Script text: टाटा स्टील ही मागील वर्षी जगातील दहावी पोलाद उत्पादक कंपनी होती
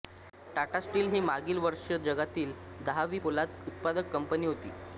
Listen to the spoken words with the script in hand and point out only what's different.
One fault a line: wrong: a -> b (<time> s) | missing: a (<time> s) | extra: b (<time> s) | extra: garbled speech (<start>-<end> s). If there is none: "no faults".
no faults